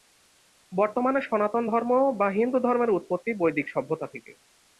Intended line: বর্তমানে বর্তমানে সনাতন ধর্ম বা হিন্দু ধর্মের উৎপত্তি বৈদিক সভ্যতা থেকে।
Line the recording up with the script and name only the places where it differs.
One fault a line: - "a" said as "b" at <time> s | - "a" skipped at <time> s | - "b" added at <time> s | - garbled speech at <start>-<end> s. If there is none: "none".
- "বর্তমানে" skipped at 1.2 s